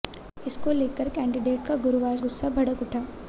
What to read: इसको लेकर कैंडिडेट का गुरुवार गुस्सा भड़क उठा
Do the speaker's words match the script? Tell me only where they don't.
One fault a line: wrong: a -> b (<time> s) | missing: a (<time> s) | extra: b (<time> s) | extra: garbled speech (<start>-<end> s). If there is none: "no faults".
no faults